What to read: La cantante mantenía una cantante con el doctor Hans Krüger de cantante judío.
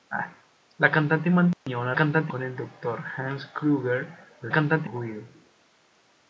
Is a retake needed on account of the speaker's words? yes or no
no